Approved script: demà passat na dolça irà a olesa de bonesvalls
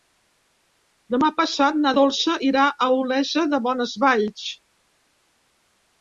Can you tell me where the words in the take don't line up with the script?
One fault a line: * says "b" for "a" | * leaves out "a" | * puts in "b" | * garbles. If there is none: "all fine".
all fine